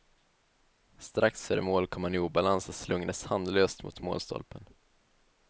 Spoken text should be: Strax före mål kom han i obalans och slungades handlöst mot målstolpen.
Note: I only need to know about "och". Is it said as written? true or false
true